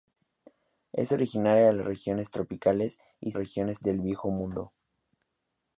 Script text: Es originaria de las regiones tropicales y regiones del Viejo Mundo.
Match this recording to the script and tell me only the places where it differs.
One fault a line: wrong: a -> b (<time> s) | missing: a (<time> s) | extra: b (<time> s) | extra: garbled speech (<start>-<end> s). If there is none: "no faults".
no faults